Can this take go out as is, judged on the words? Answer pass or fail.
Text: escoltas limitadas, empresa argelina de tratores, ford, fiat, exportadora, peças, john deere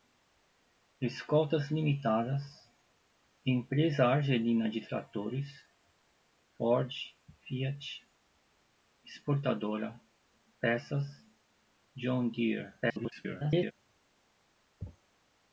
fail